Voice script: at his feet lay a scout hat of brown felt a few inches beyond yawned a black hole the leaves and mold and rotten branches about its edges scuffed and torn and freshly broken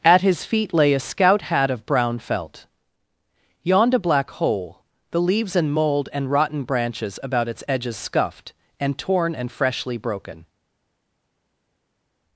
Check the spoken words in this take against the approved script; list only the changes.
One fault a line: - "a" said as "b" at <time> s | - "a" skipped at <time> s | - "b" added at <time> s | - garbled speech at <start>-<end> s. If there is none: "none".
- "a few inches beyond" skipped at 2.6 s